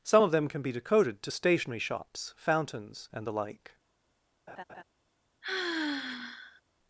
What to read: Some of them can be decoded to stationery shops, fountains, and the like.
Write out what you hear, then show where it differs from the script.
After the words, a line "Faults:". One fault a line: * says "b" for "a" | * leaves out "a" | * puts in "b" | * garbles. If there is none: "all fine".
Some of them can be decoded to stationery shops, fountains, and the like.
Faults:
all fine